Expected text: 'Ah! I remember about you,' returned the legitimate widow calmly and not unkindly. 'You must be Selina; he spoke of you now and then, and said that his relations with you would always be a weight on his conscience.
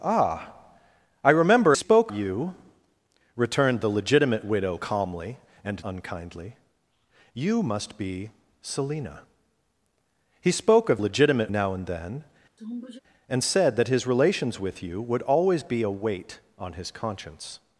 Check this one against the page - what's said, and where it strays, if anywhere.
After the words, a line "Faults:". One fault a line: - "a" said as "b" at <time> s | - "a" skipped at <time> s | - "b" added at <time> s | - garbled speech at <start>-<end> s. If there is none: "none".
'Ah! I remember spoke you,' returned the legitimate widow calmly and unkindly. 'You must be Selina; he spoke of legitimate now and then, and said that his relations with you would always be a weight on his conscience.
Faults:
- "about" said as "spoke" at 1.7 s
- "not" skipped at 5.9 s
- "you" said as "legitimate" at 11.0 s